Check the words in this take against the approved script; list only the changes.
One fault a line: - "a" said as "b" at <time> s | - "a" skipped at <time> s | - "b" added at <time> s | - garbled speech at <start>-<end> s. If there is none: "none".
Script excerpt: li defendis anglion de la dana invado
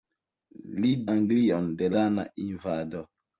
- "defendis" skipped at 0.9 s
- "la" skipped at 1.9 s